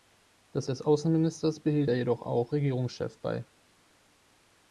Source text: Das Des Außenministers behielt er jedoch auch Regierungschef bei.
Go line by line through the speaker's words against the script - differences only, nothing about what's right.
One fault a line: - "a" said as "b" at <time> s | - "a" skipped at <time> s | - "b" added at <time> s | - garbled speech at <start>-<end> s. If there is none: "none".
none